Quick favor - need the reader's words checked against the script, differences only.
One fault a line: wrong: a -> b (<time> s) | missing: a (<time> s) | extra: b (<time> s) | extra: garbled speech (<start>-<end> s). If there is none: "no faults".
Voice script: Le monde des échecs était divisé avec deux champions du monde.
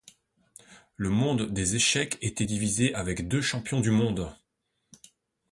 no faults